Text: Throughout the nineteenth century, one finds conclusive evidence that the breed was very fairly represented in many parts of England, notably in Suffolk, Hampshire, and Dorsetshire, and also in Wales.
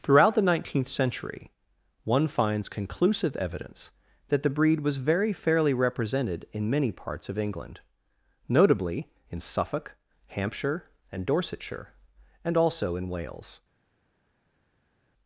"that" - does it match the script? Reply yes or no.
yes